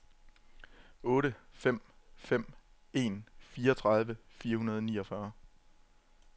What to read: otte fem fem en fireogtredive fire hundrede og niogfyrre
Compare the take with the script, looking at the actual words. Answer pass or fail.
pass